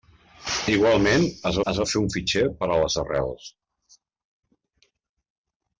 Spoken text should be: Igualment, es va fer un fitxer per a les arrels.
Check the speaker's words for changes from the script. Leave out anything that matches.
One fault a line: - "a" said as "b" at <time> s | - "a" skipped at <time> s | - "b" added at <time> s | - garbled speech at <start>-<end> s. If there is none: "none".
- "es" added at 1.7 s